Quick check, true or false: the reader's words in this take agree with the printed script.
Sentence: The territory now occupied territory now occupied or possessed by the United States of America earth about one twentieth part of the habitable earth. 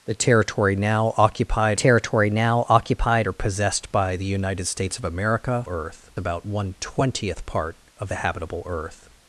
true